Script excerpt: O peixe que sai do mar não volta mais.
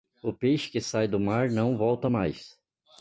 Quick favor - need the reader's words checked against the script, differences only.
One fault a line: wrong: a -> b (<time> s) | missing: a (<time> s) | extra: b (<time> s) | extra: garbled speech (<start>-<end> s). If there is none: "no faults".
no faults